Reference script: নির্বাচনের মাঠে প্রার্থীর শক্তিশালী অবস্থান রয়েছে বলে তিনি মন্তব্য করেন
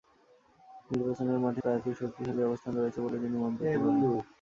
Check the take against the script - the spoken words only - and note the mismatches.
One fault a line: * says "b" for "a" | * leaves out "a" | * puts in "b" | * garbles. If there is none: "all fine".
all fine